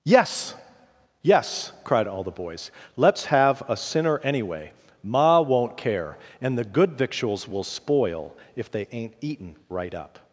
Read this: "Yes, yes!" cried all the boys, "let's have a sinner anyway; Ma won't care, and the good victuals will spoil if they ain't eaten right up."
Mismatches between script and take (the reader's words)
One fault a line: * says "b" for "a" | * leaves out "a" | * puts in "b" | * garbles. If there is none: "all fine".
all fine